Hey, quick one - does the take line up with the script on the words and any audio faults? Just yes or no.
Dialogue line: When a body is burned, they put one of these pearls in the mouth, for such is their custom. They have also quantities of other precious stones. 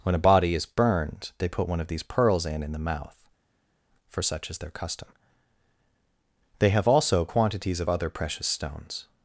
no